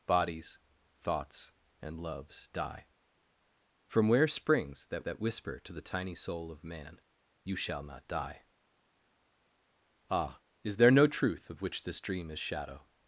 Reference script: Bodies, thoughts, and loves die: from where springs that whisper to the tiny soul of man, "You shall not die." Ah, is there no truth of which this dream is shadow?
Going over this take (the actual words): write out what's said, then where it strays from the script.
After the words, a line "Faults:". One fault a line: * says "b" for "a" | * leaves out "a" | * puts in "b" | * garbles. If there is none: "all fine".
Bodies, thoughts, and loves die: from where springs that that whisper to the tiny soul of man, "You shall not die." Ah, is there no truth of which this dream is shadow?
Faults:
* puts in "that"